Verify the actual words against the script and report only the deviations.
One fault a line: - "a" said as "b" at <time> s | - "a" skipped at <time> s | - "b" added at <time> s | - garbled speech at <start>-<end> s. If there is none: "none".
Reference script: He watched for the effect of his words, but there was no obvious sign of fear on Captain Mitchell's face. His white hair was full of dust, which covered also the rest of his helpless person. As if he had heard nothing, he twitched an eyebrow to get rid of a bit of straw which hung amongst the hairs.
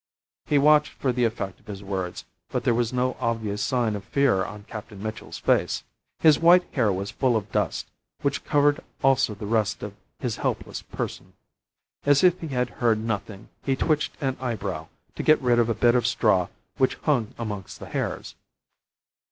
none